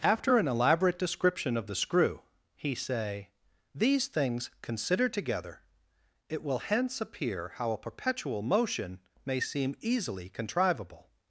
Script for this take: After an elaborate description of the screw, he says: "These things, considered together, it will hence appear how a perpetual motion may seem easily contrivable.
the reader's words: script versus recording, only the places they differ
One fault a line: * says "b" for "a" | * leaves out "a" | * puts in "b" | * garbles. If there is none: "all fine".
* says "say" for "says"